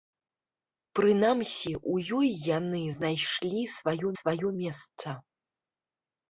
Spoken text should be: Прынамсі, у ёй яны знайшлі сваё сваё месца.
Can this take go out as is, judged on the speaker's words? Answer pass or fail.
pass